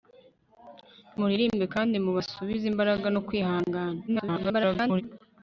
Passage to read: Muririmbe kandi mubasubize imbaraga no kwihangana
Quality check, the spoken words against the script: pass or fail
fail